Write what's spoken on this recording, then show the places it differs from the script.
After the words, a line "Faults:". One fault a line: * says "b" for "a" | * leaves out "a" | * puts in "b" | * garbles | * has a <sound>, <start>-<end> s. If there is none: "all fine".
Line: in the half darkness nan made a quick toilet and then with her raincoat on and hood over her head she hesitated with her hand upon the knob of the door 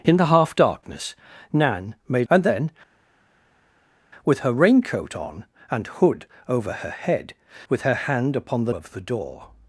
in the half darkness nan made and then with her raincoat on and hood over her head with her hand upon the of the door
Faults:
* leaves out "a quick toilet"
* leaves out "she hesitated"
* leaves out "knob"